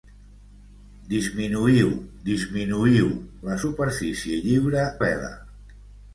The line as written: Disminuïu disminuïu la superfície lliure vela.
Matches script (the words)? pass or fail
pass